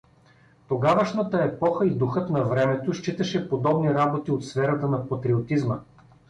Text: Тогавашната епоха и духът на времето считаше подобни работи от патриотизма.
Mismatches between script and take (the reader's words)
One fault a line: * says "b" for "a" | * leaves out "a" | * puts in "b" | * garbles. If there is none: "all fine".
* puts in "сферата на"